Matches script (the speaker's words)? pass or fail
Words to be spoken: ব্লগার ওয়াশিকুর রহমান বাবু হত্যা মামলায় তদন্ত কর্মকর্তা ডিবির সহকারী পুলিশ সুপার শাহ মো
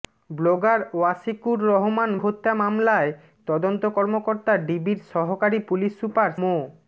fail